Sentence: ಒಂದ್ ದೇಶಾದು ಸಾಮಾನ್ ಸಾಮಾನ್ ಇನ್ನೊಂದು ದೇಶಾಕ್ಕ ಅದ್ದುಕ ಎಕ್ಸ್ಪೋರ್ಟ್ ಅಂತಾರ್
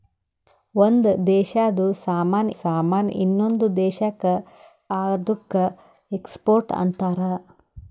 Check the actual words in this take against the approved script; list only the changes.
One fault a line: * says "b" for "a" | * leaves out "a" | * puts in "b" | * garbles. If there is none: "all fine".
all fine